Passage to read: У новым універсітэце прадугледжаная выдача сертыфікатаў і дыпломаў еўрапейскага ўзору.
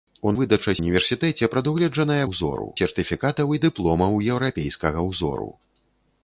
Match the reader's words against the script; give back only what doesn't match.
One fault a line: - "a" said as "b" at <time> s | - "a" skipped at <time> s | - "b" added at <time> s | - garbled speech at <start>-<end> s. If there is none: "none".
- "новым" said as "выдача" at 0.4 s
- "выдача" said as "ўзору" at 2.3 s